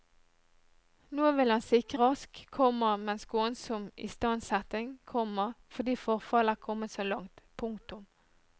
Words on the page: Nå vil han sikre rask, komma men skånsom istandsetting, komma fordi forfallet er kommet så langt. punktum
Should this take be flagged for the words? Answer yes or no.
no